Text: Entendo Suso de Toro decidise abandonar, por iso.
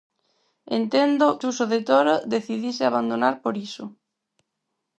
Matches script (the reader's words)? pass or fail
pass